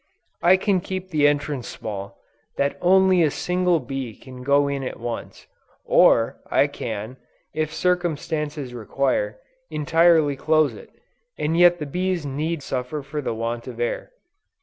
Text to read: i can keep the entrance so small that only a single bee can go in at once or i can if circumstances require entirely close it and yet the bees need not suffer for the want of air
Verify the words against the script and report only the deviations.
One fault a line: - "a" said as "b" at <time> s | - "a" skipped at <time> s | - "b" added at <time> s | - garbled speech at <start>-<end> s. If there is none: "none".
- "so" skipped at 1.7 s
- "not" skipped at 12.6 s